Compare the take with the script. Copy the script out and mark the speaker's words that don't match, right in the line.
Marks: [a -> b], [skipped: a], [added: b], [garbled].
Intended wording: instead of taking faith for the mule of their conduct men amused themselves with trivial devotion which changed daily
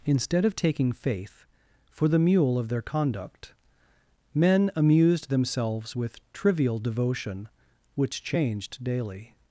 instead of taking faith for the mule of their conduct men amused themselves with trivial devotion which changed daily